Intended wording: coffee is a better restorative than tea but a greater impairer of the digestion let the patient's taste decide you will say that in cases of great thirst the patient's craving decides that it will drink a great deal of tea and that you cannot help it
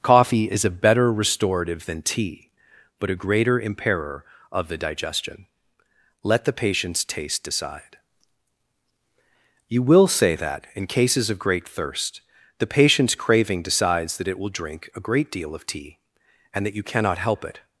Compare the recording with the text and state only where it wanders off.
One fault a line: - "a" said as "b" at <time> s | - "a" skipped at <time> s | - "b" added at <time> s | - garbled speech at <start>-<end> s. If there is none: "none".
none